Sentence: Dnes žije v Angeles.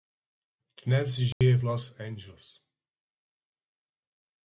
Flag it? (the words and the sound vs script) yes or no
yes